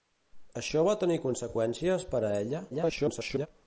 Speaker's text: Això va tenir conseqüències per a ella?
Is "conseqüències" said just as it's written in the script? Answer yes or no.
yes